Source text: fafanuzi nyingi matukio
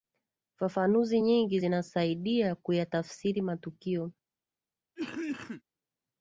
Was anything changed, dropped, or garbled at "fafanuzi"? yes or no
no